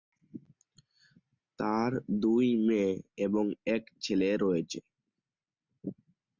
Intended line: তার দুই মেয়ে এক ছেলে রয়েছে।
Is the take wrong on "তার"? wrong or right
right